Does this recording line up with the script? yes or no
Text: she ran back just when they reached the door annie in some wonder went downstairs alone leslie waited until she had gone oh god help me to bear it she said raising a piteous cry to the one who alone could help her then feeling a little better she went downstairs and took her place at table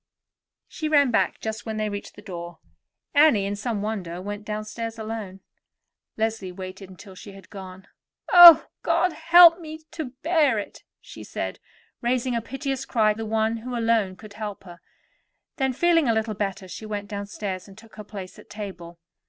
no